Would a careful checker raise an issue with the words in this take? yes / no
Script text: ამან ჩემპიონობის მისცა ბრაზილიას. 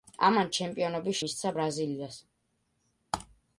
no